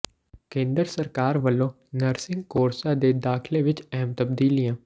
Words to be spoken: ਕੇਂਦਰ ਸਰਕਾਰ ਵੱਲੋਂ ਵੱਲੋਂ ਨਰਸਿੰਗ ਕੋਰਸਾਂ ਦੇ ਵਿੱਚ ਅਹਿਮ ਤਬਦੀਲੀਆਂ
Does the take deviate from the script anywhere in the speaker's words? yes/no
yes